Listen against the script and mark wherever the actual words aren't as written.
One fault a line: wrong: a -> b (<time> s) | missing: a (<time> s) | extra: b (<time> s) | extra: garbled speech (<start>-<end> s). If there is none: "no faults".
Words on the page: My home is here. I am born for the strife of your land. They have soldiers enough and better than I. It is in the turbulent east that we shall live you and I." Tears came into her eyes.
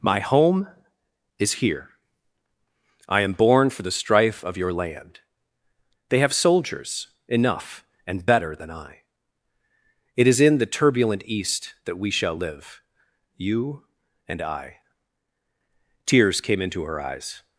no faults